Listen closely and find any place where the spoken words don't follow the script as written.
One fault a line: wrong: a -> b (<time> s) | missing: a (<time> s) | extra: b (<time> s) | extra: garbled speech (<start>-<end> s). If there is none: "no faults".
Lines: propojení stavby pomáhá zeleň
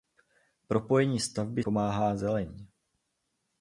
no faults